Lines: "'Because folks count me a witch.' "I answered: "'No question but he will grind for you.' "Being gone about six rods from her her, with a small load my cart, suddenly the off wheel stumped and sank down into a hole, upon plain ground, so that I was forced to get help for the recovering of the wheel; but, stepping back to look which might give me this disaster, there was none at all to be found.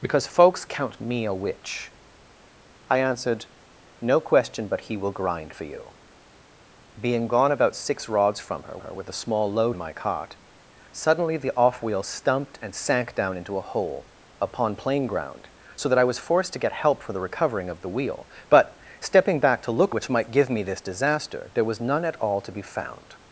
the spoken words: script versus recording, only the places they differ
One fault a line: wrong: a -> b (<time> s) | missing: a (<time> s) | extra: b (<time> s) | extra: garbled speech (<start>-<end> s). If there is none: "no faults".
no faults